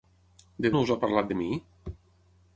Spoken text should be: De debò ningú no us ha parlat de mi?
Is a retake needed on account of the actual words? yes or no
yes